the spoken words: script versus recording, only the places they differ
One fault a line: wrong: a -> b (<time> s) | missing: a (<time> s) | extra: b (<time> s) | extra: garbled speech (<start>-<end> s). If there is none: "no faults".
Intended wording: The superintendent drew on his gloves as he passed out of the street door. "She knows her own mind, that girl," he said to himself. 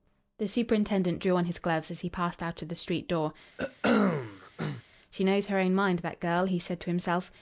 no faults